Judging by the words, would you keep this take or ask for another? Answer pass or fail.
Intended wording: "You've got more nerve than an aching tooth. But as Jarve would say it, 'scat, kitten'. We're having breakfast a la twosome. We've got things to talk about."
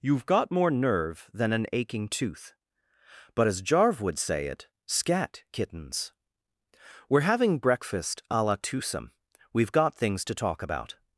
fail